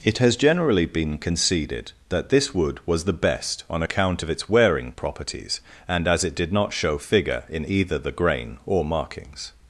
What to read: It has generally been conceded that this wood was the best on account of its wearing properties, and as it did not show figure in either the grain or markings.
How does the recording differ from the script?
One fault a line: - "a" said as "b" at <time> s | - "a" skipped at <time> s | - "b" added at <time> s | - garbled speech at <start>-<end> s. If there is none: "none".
none